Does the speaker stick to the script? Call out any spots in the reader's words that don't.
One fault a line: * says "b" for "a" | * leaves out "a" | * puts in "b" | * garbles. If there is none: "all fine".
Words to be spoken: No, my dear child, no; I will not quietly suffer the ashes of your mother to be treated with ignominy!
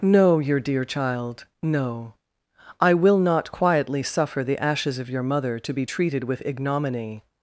* says "your" for "my"